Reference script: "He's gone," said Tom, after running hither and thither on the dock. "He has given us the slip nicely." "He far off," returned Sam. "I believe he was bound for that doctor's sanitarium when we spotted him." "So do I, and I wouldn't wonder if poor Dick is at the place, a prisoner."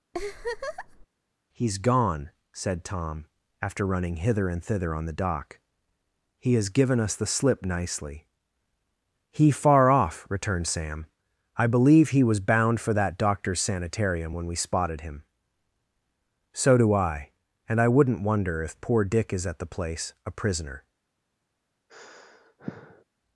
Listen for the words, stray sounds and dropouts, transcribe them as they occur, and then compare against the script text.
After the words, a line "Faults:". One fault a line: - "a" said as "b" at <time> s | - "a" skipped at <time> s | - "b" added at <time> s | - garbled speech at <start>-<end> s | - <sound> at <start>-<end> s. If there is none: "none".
"He's gone," said Tom, after running hither and thither on the dock. "He has given us the slip nicely." "He far off," returned Sam. "I believe he was bound for that doctor's sanitarium when we spotted him." "So do I, and I wouldn't wonder if poor Dick is at the place, a prisoner."
Faults:
- laugh at 0.1-1.1 s
- sigh at 21.9-23.0 s